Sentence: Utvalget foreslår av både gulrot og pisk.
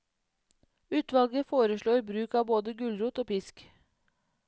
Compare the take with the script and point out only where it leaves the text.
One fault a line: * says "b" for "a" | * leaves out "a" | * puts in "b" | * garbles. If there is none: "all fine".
* puts in "bruk"